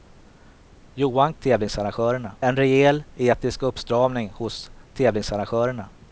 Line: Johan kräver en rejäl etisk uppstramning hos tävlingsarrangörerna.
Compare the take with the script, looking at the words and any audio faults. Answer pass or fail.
fail